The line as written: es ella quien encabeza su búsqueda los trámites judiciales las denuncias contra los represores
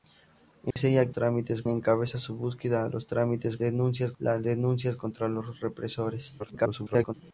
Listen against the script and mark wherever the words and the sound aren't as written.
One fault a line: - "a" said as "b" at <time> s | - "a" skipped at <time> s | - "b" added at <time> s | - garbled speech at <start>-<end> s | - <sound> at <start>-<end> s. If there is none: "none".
- dropout at 0.7-0.8 s
- "quien" said as "trámites" at 1.1 s
- "judiciales" said as "denuncias" at 3.6 s
- garbled speech at 6.4-7.1 s